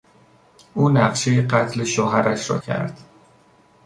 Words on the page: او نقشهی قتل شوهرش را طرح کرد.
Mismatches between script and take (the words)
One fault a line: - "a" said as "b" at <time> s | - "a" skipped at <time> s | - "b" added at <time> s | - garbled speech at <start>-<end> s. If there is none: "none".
- "طرح" skipped at 2.6 s